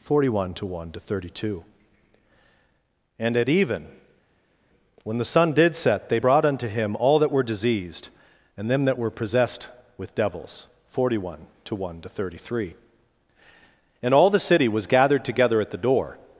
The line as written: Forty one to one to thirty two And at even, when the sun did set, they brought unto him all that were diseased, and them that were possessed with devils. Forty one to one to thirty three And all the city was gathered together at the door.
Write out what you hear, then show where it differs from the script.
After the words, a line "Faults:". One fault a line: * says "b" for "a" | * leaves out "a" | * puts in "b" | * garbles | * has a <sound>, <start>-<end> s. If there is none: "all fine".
Forty one to one to thirty two And at even, when the sun did set, they brought unto him all that were diseased, and them that were possessed with devils. Forty one to one to thirty three And all the city was gathered together at the door.
Faults:
all fine